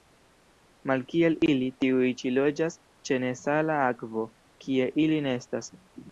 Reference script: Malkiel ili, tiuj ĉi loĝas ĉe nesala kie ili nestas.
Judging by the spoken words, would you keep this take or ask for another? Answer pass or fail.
fail